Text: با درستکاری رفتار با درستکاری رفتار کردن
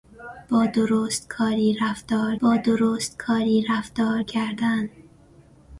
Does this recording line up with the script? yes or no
yes